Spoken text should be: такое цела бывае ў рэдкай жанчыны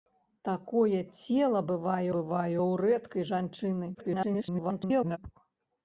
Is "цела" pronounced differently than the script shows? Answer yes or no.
no